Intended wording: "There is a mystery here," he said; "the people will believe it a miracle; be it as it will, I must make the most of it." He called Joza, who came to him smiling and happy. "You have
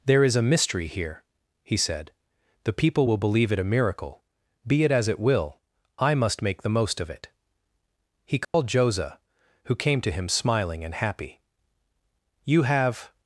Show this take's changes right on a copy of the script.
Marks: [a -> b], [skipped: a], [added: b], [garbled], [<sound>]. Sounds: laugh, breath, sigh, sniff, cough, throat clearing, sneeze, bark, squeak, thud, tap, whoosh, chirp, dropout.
"There is a mystery here," he said; "the people will believe it a miracle; be it as it will, I must make the most of it." He called [dropout] Joza, who came to him smiling and happy. "You have